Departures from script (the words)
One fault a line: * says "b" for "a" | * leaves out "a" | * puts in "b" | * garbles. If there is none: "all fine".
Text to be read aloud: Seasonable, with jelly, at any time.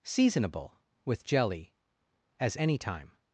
* says "as" for "at"